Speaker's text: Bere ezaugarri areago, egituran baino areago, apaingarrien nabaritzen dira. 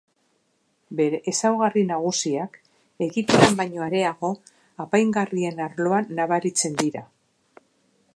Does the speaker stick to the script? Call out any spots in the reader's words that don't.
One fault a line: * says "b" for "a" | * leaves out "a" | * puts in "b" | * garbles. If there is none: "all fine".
* says "nagusiak" for "areago"
* puts in "arloan"